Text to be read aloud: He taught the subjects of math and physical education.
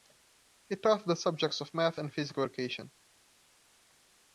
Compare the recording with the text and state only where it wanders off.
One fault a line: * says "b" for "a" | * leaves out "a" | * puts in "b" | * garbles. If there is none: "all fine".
all fine